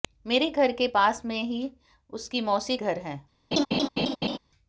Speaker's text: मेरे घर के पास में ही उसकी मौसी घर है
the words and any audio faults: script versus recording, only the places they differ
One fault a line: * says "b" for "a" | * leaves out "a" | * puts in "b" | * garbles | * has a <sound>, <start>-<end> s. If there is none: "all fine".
* has a laugh, 3.5-4.4 s